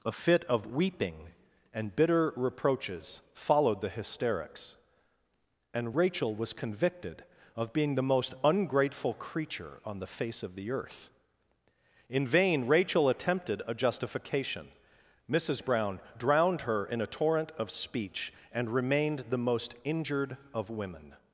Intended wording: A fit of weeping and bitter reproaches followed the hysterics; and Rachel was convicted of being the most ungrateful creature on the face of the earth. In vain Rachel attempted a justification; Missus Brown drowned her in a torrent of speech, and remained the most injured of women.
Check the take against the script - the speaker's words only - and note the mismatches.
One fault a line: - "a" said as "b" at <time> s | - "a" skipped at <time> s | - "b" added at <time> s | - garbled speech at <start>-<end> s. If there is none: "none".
none